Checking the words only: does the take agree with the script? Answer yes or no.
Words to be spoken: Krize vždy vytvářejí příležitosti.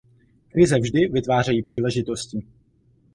yes